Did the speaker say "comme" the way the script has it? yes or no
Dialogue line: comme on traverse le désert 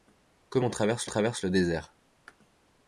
yes